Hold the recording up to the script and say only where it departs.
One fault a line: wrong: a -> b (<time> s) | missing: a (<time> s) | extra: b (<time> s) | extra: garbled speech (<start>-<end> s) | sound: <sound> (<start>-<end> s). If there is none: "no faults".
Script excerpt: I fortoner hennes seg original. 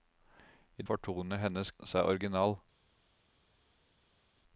no faults